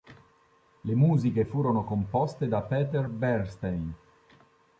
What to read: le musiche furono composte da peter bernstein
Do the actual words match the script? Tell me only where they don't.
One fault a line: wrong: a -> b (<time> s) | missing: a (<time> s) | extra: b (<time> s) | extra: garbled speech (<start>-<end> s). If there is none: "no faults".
no faults